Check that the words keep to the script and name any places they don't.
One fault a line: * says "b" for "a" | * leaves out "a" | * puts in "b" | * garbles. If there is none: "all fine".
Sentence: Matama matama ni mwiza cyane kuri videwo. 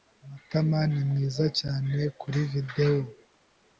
* leaves out "matama"